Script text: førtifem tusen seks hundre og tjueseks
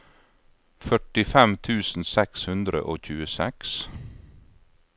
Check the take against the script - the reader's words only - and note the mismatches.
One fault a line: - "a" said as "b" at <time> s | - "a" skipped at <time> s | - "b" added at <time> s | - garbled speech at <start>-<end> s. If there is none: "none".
none